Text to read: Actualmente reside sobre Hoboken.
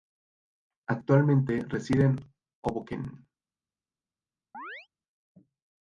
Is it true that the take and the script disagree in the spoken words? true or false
true